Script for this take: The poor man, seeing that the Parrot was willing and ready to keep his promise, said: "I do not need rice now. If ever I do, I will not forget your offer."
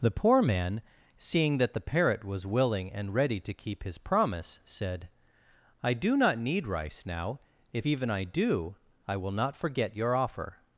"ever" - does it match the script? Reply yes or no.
no